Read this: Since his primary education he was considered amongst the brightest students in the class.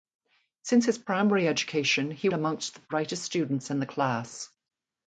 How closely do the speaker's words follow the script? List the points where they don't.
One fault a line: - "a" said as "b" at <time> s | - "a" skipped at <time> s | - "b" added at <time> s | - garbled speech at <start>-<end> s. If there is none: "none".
- "was considered" skipped at 2.3 s